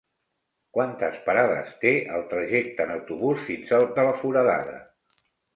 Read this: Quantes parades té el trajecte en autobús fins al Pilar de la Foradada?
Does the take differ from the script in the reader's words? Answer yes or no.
yes